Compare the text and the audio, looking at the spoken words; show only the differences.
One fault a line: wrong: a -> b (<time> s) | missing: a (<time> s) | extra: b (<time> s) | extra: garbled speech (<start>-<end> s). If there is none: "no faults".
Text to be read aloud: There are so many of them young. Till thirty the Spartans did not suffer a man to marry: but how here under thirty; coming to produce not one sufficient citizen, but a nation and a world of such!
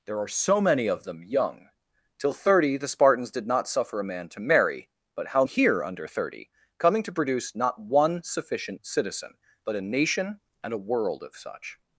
no faults